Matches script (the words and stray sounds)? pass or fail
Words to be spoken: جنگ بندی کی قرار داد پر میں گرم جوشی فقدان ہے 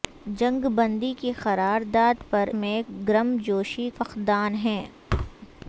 fail